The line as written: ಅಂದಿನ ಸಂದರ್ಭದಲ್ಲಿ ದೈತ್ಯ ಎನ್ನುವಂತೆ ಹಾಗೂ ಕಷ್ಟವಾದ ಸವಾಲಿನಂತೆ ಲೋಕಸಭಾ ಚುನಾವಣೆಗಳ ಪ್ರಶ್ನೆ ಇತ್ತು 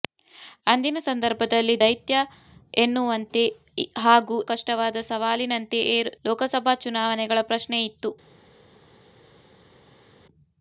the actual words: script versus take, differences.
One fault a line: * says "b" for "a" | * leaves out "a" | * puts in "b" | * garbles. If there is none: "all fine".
all fine